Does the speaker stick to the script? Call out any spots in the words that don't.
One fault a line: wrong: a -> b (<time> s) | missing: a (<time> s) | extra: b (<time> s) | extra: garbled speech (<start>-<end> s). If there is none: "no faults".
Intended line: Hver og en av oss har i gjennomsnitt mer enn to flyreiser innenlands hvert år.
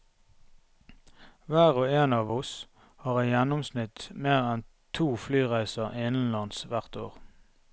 no faults